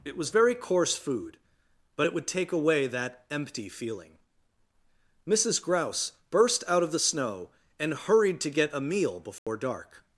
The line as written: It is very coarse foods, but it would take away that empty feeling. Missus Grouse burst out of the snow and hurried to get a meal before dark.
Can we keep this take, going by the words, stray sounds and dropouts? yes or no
no